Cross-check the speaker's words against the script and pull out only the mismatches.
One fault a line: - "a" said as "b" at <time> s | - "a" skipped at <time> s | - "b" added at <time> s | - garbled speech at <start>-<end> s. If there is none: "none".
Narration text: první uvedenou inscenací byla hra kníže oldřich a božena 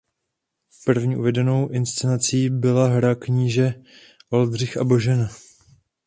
none